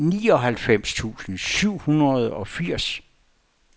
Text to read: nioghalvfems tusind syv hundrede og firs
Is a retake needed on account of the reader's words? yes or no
no